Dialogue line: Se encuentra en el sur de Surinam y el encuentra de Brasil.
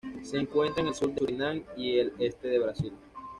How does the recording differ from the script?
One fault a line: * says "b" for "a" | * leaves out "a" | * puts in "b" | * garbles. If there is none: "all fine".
* says "este" for "encuentra"